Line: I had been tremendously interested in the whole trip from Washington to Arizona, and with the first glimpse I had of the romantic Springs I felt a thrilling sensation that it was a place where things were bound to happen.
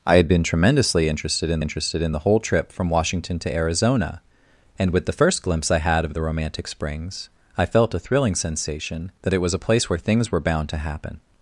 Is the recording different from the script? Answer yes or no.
yes